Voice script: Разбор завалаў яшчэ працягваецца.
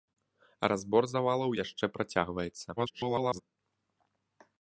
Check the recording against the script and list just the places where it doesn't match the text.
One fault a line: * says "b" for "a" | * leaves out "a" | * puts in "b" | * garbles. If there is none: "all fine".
* garbles